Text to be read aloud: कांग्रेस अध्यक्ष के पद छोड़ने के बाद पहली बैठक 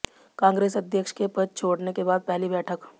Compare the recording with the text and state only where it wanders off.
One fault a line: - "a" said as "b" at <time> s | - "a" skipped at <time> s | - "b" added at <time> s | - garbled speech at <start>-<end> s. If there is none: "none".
none